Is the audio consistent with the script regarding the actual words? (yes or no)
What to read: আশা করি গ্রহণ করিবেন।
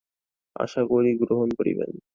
yes